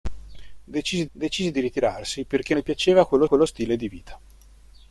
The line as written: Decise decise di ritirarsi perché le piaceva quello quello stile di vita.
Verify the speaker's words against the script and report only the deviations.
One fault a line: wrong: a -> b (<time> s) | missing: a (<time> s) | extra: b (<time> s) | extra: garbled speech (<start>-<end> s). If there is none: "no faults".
no faults